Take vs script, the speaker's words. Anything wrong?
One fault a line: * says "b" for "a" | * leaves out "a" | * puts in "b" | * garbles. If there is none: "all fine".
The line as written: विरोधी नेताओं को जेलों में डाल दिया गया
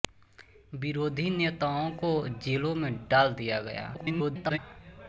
* garbles